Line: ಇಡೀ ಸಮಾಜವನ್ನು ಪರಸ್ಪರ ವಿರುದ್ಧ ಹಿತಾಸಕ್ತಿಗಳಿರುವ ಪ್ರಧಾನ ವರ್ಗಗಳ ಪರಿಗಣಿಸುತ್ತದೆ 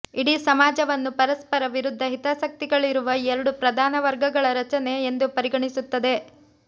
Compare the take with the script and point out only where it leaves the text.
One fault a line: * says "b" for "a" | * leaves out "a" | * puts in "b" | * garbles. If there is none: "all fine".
* puts in "ಎರಡು"
* puts in "ರಚನೆ ಎಂದು"